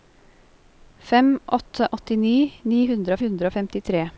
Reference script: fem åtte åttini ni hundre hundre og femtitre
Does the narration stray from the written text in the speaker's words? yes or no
no